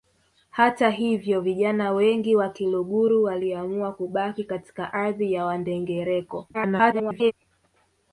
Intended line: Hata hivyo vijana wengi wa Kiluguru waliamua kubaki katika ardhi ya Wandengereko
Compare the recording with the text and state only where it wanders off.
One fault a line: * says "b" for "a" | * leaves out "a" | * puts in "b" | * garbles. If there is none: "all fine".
* garbles